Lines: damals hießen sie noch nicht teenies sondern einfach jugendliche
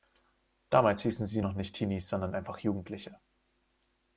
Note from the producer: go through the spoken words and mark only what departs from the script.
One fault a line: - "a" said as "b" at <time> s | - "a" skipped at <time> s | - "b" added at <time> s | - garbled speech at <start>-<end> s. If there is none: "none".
none